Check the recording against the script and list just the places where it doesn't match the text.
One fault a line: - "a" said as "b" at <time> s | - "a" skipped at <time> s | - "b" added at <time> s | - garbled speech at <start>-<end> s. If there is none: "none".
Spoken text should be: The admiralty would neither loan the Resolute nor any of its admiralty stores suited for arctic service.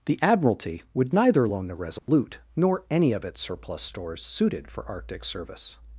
- "admiralty" said as "surplus" at 3.4 s